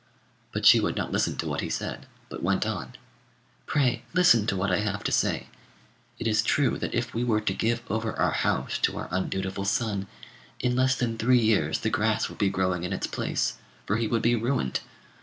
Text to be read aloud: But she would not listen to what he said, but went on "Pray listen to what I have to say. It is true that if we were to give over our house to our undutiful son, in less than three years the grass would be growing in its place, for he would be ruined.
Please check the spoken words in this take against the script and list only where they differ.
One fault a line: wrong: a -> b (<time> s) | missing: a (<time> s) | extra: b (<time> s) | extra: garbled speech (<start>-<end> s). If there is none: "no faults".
no faults